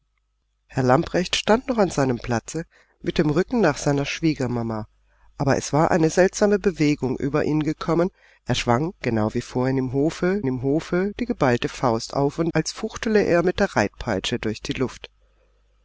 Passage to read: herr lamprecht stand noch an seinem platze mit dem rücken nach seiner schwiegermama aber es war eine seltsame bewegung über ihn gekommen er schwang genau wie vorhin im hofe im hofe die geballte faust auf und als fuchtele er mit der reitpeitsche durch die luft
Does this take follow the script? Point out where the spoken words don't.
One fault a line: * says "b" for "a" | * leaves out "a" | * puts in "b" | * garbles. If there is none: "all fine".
all fine